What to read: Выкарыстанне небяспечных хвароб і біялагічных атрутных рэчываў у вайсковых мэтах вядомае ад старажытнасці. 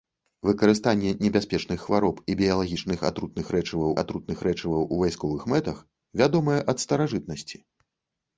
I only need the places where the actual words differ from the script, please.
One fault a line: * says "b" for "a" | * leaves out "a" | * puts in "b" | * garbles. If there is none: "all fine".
* puts in "атрутных рэчываў"